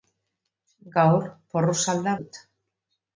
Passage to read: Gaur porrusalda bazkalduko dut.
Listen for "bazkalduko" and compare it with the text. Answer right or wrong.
wrong